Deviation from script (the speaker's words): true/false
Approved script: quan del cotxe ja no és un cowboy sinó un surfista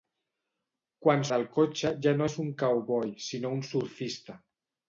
false